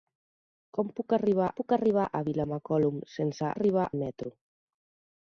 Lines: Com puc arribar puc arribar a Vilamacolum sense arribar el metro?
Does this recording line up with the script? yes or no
yes